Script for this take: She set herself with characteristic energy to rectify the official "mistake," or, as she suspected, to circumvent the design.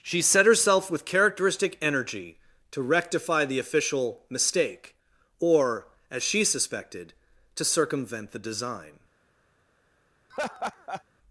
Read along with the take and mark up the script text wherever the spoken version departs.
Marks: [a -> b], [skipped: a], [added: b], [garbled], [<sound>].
She set herself with characteristic energy to rectify the official "mistake," or, as she suspected, to circumvent the design. [laugh]